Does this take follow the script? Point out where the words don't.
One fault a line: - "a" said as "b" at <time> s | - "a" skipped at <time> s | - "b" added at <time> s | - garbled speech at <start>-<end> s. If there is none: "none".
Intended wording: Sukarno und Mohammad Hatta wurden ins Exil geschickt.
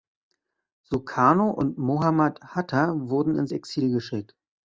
none